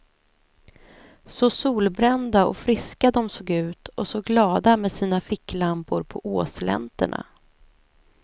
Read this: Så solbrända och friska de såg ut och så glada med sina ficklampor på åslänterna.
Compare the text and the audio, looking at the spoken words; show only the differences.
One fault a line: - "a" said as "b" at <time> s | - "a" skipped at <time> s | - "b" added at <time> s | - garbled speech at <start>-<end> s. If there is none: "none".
none